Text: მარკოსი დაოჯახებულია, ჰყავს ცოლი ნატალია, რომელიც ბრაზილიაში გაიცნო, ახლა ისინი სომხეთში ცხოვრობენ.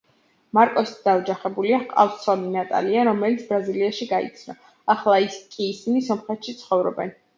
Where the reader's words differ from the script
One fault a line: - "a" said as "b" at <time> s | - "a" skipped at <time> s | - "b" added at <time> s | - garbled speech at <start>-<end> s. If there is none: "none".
- "კი" added at 5.6 s